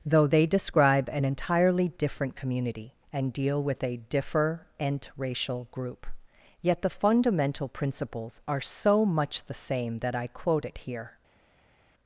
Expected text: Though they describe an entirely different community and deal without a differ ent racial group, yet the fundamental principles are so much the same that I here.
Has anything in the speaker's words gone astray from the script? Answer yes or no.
yes